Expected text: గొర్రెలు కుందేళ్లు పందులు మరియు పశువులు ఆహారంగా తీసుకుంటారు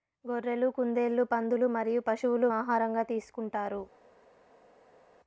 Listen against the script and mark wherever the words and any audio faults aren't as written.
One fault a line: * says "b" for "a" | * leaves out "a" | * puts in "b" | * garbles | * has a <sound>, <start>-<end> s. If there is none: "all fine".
all fine